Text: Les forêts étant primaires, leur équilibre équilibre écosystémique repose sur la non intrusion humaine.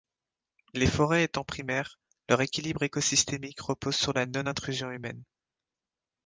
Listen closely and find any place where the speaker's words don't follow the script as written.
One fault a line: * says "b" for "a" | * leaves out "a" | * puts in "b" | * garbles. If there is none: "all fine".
* leaves out "équilibre"